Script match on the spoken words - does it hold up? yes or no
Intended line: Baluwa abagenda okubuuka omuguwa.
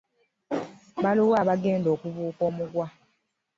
yes